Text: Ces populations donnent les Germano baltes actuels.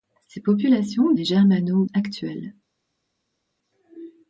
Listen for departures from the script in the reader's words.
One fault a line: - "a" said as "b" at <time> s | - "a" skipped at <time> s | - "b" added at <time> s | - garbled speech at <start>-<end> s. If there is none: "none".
- "donnent" skipped at 1.1 s
- "baltes" skipped at 1.9 s